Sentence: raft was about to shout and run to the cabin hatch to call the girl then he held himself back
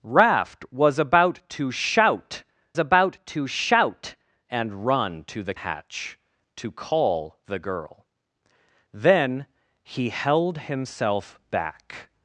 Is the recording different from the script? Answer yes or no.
yes